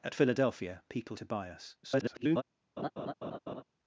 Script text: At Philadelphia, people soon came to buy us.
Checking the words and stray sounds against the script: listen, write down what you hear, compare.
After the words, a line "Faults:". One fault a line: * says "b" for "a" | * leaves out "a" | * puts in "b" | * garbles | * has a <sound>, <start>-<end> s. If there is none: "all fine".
At Philadelphia, people to buy us. [garbled]
Faults:
* leaves out "soon came"
* garbles
* has a laugh, 2.8-3.6 s